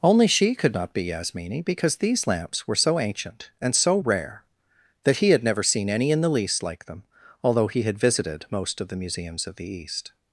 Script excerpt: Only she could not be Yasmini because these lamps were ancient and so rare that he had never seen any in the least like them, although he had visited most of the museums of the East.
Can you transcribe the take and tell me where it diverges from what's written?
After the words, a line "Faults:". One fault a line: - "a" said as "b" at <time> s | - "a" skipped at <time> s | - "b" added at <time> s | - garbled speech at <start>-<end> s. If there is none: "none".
Only she could not be Yasmini because these lamps were so ancient and so rare that he had never seen any in the least like them, although he had visited most of the museums of the East.
Faults:
- "so" added at 2.8 s